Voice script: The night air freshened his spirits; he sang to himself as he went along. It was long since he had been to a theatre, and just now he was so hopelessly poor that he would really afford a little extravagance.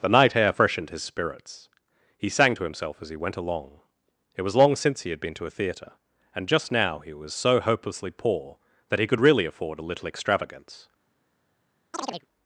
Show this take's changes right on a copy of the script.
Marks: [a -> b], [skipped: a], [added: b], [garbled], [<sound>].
The night air freshened his spirits; he sang to himself as he went along. It was long since he had been to a theatre, and just now he was so hopelessly poor that he [would -> could] really afford a little extravagance. [chirp]